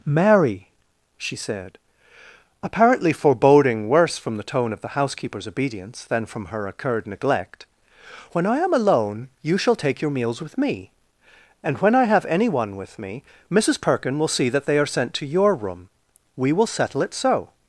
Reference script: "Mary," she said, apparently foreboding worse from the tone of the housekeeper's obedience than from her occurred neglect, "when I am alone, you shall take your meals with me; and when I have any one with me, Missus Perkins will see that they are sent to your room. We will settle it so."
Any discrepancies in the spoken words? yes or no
yes